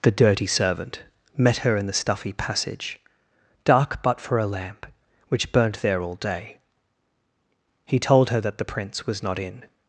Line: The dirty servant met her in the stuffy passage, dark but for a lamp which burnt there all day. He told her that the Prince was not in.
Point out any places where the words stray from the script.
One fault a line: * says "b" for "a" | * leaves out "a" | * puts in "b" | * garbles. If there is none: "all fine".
all fine